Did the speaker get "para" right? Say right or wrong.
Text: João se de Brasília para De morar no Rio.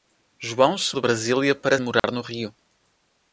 right